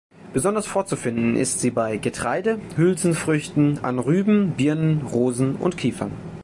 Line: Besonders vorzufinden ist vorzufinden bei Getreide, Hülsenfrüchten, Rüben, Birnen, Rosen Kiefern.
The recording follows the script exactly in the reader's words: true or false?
false